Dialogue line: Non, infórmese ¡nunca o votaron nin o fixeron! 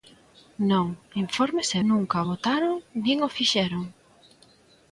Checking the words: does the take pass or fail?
pass